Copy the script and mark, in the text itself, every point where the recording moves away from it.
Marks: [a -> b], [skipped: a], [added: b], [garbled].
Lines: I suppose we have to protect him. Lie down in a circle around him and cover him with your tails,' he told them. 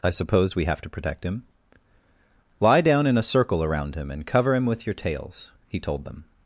I suppose we have to protect him. Lie down in a circle around him and cover him with your tails,' he told them.